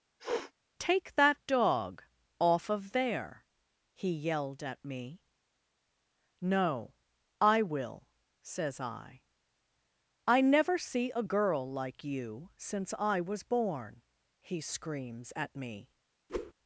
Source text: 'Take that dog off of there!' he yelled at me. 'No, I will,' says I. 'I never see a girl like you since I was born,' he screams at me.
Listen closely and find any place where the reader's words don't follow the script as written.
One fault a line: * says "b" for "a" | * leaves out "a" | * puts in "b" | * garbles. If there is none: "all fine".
all fine